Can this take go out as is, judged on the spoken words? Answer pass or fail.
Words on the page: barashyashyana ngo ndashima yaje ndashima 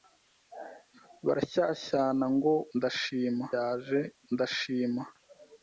pass